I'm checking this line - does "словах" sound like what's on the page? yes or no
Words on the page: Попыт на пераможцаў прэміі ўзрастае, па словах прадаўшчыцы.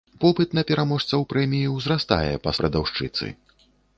no